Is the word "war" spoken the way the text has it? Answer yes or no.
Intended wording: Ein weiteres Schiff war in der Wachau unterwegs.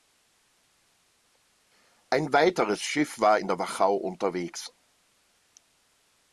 yes